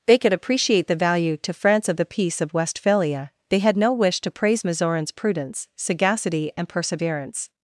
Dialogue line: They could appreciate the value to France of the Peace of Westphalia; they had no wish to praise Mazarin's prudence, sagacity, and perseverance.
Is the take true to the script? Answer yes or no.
yes